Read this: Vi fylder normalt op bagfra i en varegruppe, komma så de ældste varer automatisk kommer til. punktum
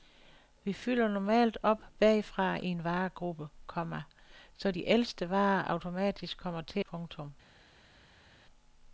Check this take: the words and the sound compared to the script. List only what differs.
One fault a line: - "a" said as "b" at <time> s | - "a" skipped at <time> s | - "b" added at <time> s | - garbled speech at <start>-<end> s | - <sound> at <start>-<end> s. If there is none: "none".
none